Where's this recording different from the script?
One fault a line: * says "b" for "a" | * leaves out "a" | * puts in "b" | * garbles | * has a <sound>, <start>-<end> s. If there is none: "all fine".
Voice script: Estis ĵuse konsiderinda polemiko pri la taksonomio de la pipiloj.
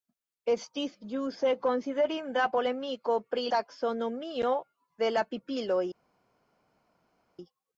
* leaves out "la"